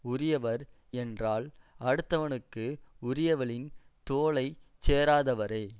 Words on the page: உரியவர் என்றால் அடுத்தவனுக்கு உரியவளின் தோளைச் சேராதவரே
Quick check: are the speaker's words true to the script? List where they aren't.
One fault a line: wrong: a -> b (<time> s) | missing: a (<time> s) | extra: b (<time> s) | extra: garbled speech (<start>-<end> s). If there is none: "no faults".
no faults